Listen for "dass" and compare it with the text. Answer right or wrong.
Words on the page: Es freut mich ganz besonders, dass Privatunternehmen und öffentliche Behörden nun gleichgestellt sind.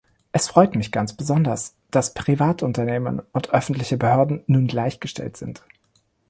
right